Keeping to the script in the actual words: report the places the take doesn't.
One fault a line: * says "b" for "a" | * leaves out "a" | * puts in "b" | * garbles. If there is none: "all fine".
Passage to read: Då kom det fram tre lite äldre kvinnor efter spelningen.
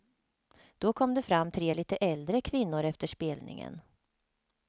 all fine